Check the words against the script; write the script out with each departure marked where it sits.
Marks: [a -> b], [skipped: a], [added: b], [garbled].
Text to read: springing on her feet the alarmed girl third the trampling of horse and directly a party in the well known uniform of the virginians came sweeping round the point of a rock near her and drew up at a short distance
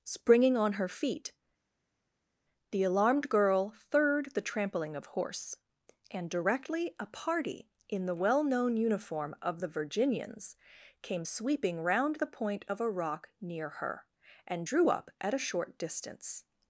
springing on her feet the alarmed girl third the trampling of horse and directly a party in the well known uniform of the virginians came sweeping round the point of a rock near her and drew up at a short distance